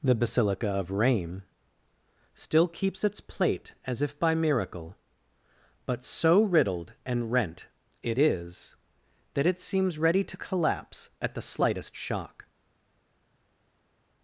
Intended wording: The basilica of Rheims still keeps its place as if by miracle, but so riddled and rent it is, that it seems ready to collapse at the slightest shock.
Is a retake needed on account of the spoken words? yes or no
yes